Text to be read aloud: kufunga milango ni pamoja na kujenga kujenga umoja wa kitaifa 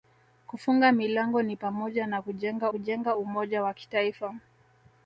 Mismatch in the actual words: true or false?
false